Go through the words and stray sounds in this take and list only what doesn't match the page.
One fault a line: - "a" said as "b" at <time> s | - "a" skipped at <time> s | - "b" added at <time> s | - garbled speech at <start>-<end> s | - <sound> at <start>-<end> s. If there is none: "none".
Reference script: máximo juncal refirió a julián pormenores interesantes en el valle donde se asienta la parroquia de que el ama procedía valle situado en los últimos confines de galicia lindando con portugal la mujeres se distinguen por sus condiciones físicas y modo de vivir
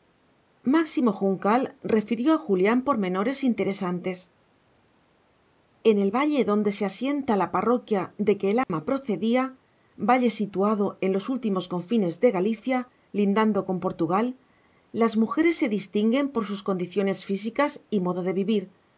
- dropout at 8.6-8.7 s
- "la" said as "las" at 14.9 s